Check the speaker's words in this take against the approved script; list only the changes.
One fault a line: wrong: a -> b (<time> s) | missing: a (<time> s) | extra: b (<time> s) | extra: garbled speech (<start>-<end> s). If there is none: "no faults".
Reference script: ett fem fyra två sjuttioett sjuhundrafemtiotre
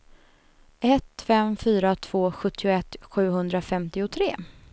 no faults